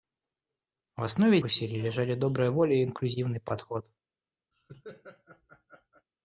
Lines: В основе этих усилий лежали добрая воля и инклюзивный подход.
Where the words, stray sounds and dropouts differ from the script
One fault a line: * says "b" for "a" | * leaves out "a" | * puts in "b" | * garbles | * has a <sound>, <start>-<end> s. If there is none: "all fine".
* leaves out "этих"
* has a laugh, 4.5-6.1 s